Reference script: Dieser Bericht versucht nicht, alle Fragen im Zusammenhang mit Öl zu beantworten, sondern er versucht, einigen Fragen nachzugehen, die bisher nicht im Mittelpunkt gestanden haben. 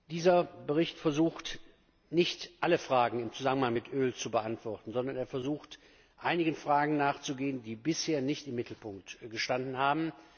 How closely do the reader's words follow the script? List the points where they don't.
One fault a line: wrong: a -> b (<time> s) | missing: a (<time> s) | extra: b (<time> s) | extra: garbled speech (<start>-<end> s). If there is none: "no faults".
no faults